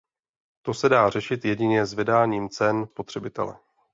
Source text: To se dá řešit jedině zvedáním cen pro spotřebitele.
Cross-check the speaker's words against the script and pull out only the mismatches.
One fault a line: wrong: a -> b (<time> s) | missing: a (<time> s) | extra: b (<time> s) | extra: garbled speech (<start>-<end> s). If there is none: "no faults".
missing: pro (2.9 s)